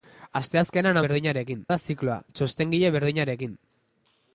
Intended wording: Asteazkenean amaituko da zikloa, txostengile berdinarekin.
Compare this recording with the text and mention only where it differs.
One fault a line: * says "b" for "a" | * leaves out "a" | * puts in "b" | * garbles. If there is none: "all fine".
* says "berdinarekin" for "amaituko"